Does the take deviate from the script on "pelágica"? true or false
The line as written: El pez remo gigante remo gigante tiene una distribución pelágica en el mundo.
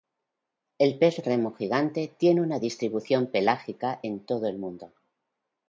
false